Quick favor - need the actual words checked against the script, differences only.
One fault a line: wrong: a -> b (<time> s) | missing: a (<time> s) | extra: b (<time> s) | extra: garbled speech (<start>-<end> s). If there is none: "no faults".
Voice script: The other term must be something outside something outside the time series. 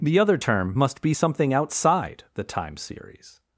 missing: something outside (2.2 s)